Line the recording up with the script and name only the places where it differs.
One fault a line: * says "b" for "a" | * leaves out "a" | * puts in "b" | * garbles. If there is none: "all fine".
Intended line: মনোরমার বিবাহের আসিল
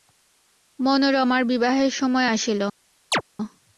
* puts in "সময়"